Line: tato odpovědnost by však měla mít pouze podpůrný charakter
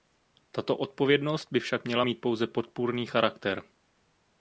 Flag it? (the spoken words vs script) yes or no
no